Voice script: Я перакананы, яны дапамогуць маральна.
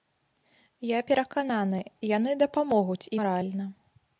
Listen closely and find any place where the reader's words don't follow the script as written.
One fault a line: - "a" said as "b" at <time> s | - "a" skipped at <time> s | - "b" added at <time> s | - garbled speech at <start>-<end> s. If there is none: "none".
none